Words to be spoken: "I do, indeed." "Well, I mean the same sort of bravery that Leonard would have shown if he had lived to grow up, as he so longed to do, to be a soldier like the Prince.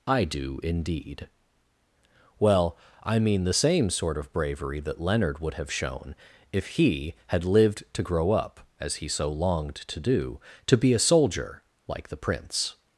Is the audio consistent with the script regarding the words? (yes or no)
yes